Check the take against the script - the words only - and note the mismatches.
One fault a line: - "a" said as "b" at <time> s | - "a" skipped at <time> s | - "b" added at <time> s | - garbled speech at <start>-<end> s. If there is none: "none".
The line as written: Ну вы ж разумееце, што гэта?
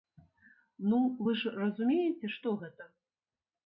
none